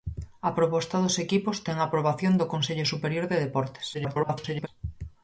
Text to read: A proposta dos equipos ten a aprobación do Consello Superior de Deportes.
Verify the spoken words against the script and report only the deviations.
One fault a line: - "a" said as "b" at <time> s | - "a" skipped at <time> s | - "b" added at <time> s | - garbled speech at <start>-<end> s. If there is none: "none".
- garbled speech at 3.9-4.7 s